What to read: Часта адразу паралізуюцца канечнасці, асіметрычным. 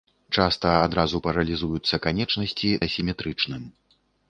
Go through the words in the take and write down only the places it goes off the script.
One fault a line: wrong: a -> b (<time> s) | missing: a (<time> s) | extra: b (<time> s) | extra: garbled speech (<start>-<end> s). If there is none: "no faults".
no faults